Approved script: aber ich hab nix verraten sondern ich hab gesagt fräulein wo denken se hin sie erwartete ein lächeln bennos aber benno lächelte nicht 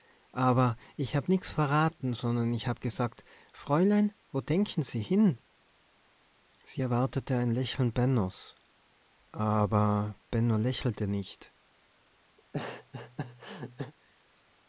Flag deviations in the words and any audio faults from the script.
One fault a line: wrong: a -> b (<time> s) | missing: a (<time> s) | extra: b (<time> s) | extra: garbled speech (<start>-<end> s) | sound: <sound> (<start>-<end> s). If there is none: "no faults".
sound: laugh (12.4-13.9 s)